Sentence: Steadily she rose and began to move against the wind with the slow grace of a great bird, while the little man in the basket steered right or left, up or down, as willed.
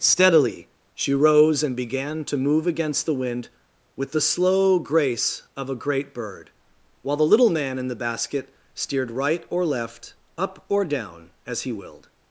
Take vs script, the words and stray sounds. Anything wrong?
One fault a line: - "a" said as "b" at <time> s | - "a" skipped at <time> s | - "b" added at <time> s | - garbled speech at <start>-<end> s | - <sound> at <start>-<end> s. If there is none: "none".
- "he" added at 11.6 s